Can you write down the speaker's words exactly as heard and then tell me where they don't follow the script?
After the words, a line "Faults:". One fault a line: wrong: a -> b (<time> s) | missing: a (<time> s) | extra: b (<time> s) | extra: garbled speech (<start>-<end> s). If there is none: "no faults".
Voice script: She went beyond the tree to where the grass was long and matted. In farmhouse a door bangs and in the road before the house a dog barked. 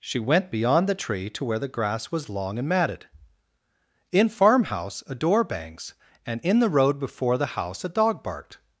She went beyond the tree to where the grass was long and matted. In farmhouse a door bangs and in the road before the house a dog barked.
Faults:
no faults